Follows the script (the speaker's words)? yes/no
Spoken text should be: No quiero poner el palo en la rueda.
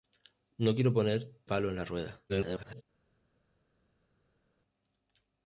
no